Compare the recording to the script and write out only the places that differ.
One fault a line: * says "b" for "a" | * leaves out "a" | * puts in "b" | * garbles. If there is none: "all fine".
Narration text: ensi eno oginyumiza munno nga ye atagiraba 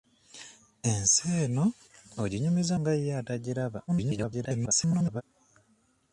* leaves out "munno"
* garbles